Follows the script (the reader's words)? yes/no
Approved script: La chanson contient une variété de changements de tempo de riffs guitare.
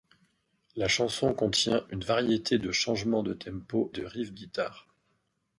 yes